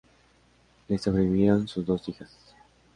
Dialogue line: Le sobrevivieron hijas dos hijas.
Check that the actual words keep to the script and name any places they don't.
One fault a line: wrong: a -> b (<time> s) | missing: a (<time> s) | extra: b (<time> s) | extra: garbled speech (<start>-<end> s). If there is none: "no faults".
wrong: hijas -> sus (1.7 s)